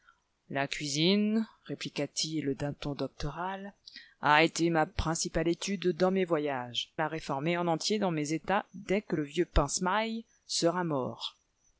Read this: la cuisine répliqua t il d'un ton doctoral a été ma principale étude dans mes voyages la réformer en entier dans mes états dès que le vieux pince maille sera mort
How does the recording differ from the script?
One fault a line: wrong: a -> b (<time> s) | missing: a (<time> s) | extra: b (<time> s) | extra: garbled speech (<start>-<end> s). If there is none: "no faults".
no faults